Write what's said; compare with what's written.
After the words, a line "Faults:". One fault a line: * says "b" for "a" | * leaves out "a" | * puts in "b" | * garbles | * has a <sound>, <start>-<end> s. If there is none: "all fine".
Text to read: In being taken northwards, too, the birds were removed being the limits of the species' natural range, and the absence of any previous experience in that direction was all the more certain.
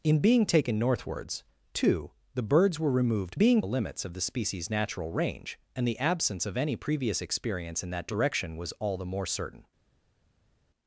In being taken northwards, too, the birds were removed being the limits of the species' natural range, and the absence of any previous experience in that direction was all the more certain.
Faults:
all fine